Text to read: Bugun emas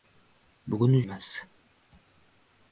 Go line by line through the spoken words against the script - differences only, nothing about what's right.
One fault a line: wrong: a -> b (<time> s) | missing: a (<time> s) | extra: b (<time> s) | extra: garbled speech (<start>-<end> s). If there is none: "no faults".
no faults